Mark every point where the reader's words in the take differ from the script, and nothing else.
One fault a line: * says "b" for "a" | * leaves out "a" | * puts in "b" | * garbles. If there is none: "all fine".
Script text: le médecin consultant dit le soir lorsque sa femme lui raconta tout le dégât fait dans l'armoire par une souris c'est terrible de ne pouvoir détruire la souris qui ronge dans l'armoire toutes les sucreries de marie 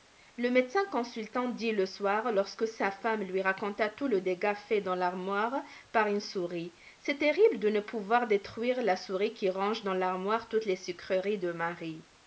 all fine